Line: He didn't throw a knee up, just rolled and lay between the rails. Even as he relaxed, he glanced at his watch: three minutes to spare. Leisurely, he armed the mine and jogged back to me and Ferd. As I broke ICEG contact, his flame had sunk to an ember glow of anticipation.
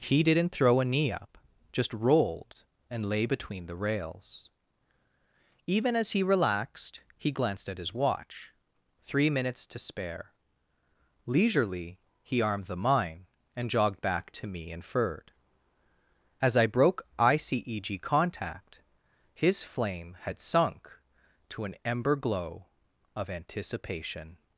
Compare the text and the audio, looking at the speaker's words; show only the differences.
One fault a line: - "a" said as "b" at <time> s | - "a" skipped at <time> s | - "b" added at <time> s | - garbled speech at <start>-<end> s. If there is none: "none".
none